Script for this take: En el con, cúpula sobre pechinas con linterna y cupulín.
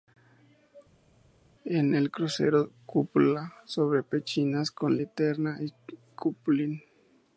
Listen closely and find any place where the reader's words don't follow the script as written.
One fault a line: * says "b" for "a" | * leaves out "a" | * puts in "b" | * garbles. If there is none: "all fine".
* says "crucero" for "con"